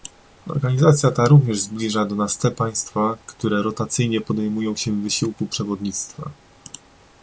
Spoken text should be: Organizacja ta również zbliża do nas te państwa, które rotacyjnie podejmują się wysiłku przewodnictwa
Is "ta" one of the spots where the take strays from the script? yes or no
no